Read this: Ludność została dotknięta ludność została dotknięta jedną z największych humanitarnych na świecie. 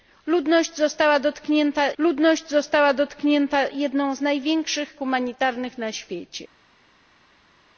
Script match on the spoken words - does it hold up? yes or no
yes